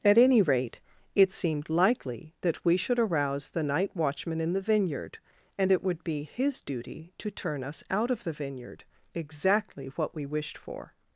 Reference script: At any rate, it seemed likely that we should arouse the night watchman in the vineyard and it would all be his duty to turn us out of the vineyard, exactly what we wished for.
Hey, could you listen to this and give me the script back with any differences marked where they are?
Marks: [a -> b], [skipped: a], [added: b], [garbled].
At any rate, it seemed likely that we should arouse the night watchman in the vineyard and it would [skipped: all] be his duty to turn us out of the vineyard, exactly what we wished for.